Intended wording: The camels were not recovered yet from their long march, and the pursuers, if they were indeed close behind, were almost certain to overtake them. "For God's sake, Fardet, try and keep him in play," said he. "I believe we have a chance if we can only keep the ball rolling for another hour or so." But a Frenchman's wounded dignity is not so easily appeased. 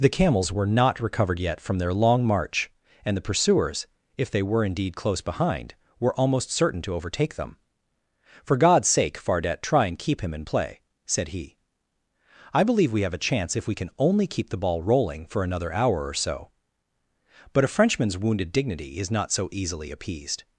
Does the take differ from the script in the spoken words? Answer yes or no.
no